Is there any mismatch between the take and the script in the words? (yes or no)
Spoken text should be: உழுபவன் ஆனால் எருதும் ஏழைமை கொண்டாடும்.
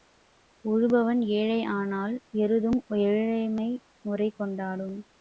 yes